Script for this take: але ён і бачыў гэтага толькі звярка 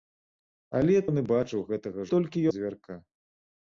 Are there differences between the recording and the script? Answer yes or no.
no